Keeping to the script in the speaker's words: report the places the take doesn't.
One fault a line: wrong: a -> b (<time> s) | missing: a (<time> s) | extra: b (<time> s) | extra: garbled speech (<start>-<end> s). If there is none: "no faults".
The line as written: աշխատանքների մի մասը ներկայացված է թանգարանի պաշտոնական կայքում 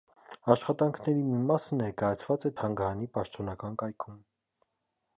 no faults